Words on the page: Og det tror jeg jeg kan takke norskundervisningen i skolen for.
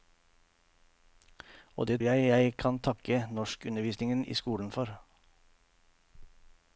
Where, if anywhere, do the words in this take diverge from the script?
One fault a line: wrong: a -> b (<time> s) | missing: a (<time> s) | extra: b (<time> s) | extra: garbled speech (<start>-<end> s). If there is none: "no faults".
missing: tror (2.0 s)